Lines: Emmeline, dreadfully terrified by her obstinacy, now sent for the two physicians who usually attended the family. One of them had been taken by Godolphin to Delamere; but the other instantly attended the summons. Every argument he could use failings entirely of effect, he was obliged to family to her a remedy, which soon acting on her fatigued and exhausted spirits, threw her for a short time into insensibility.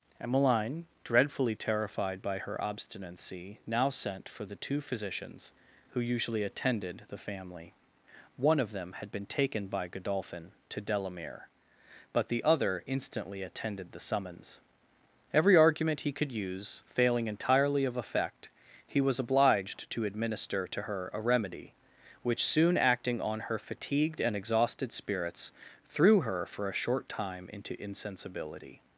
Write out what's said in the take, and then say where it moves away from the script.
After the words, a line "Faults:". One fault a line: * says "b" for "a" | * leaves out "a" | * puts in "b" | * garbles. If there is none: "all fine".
Emmeline, dreadfully terrified by her obstinacy, now sent for the two physicians who usually attended the family. One of them had been taken by Godolphin to Delamere; but the other instantly attended the summons. Every argument he could use failing entirely of effect, he was obliged to administer to her a remedy, which soon acting on her fatigued and exhausted spirits, threw her for a short time into insensibility.
Faults:
* says "failing" for "failings"
* says "administer" for "family"